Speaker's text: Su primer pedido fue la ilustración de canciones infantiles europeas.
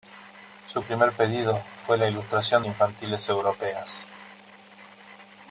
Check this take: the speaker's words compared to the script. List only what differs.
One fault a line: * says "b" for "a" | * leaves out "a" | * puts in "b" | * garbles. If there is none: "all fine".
* leaves out "de canciones"